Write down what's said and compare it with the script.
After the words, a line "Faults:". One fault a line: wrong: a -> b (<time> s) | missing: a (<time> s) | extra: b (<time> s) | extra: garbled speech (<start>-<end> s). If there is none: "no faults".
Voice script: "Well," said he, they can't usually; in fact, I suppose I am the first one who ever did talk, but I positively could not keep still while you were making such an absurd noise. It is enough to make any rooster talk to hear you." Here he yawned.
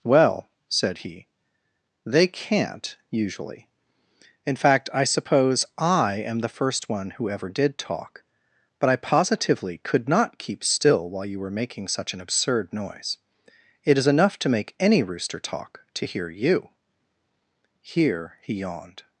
"Well," said he, they can't usually; in fact, I suppose I am the first one who ever did talk, but I positively could not keep still while you were making such an absurd noise. It is enough to make any rooster talk to hear you." Here he yawned.
Faults:
no faults